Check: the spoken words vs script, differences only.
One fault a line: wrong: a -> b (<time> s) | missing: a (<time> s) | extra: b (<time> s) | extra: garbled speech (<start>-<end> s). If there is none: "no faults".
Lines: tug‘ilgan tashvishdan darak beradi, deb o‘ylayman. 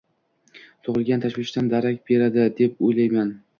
no faults